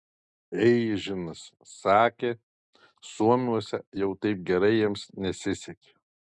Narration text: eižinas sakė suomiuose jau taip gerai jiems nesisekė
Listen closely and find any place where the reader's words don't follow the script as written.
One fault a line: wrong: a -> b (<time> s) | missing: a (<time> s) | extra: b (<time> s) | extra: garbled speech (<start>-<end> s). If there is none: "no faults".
no faults